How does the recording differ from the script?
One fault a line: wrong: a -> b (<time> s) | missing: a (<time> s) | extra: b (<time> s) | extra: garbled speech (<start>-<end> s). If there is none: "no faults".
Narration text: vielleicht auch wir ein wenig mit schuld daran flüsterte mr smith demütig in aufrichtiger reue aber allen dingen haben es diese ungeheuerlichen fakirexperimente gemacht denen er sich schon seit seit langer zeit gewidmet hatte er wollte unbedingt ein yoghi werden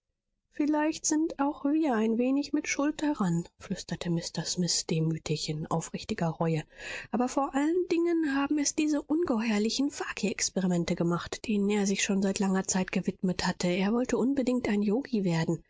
extra: sind (1.1 s)
extra: vor (7.3 s)
missing: seit (12.4 s)